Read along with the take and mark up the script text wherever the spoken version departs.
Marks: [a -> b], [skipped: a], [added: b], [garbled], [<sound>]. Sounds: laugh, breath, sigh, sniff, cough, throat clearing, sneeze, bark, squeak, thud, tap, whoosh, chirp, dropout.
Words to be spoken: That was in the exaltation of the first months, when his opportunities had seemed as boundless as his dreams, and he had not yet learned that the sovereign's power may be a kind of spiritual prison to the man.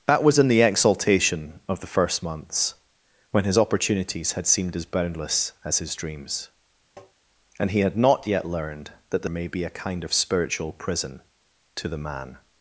That was in the exaltation of the first months, when his opportunities had seemed as boundless as his dreams, [tap] and he had not yet learned that the [skipped: sovereign's power] may be a kind of spiritual prison to the man.